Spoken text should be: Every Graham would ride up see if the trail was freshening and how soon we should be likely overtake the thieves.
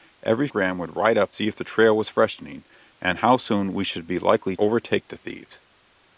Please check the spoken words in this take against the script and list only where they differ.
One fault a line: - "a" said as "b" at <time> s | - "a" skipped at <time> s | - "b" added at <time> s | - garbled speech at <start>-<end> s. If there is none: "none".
none